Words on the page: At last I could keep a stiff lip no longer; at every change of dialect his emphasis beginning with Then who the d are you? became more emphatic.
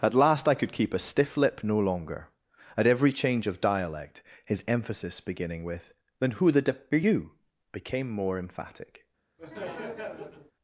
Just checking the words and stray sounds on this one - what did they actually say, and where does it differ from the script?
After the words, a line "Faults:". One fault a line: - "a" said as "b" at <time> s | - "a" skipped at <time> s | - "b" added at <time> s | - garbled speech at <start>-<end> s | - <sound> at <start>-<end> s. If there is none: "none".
At last I could keep a stiff lip no longer; at every change of dialect his emphasis beginning with Then who the d are you? became more emphatic.
Faults:
- laugh at 9.4-10.5 s